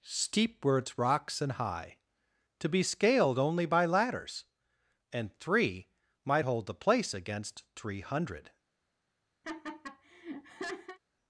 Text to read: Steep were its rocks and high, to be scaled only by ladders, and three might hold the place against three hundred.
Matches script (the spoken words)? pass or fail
pass